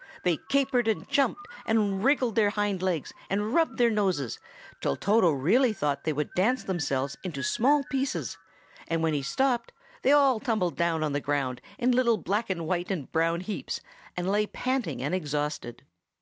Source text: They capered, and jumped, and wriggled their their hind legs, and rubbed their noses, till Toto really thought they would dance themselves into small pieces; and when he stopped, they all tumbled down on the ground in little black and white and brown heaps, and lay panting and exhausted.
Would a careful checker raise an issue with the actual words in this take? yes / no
yes